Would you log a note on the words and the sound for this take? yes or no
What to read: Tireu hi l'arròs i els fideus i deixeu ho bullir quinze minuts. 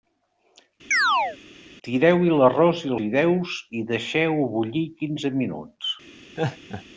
yes